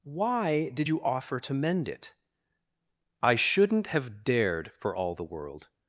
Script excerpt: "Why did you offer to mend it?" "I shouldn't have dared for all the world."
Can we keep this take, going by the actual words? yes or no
yes